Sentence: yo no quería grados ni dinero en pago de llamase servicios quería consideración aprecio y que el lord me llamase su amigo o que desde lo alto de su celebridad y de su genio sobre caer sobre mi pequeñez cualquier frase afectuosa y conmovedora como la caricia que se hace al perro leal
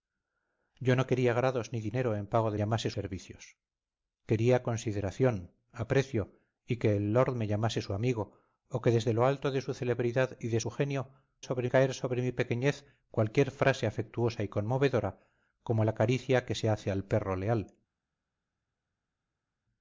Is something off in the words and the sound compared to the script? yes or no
no